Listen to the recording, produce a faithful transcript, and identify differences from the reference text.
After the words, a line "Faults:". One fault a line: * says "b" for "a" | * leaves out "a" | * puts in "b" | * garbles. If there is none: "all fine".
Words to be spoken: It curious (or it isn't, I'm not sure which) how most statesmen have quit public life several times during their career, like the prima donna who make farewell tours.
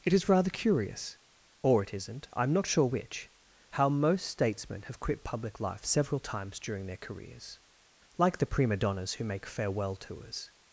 It is rather curious (or it isn't, I'm not sure which) how most statesmen have quit public life several times during their careers, like the prima donnas who make farewell tours.
Faults:
* puts in "is rather"
* says "careers" for "career"
* says "donnas" for "donna"